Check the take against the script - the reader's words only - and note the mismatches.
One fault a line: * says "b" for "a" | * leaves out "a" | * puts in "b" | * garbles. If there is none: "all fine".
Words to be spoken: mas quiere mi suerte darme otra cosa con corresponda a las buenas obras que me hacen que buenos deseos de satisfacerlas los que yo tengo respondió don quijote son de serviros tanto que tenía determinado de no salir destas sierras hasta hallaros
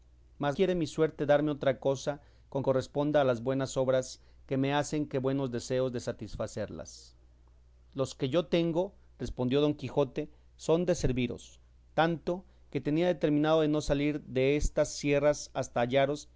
all fine